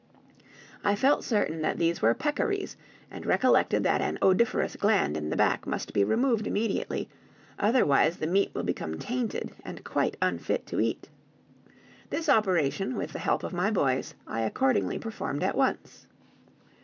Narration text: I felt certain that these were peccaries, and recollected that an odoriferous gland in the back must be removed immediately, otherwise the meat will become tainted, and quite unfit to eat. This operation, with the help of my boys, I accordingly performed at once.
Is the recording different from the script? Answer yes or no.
no